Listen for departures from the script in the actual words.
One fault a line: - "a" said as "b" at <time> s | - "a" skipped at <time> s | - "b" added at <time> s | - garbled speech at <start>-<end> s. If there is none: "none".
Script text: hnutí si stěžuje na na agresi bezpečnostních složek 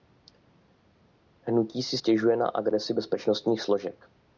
- "na" skipped at 2.5 s